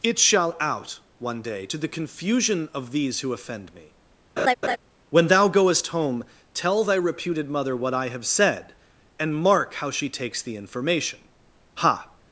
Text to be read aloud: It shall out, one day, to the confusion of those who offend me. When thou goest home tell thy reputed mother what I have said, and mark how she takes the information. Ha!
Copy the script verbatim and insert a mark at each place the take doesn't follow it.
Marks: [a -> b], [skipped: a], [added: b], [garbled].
It shall out, one day, to the confusion of [those -> these] who offend me. When thou goest home tell thy reputed mother what I have said, and mark how she takes the information. Ha!